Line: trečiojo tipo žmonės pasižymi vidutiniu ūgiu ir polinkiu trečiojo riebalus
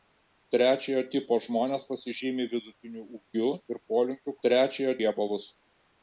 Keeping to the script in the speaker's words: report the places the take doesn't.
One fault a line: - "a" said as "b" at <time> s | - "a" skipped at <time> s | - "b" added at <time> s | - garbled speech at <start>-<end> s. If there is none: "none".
none